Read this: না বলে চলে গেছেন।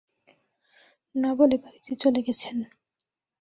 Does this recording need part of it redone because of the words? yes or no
yes